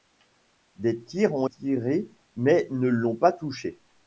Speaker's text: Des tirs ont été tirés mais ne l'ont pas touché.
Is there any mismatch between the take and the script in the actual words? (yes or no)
yes